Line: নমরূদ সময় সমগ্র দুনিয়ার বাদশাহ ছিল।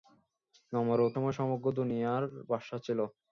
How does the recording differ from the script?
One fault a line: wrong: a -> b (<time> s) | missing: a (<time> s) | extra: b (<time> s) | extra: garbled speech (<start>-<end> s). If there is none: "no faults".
no faults